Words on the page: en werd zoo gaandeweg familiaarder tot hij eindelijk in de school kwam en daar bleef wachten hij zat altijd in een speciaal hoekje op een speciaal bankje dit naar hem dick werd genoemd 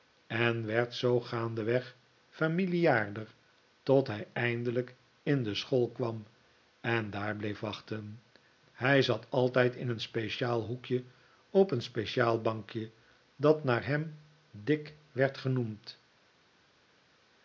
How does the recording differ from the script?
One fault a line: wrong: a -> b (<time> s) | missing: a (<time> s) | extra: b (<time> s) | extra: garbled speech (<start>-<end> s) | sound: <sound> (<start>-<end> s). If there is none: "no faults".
wrong: dit -> dat (13.3 s)